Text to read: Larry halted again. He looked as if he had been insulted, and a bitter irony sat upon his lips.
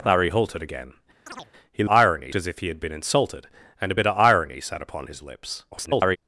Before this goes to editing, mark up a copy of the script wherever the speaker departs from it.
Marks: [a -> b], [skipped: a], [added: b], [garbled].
Larry halted again. He [looked -> irony] as if he had been insulted, and a bitter irony sat upon his lips. [garbled]